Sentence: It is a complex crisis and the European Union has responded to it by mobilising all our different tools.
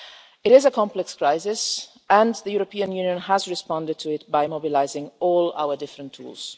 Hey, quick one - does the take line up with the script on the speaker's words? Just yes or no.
yes